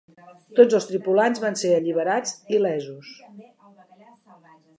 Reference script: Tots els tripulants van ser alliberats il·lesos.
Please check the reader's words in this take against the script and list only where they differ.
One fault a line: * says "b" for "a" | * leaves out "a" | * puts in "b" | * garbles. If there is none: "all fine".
all fine